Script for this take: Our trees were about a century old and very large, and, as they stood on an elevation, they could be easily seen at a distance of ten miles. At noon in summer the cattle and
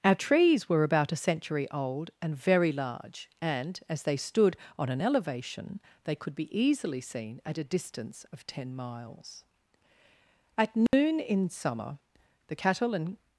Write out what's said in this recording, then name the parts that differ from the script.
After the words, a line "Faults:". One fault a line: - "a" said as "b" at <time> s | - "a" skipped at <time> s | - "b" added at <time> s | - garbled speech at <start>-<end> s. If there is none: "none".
Our trees were about a century old and very large, and, as they stood on an elevation, they could be easily seen at a distance of ten miles. At noon in summer the cattle and
Faults:
none